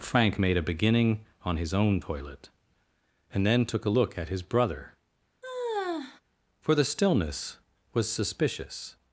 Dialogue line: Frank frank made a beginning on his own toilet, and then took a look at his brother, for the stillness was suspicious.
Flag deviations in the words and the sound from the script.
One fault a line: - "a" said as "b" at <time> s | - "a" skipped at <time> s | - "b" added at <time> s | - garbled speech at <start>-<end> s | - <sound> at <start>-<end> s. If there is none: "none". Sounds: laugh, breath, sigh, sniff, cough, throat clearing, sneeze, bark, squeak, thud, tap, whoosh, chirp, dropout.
- "frank" skipped at 0.4 s
- sigh at 5.4-6.2 s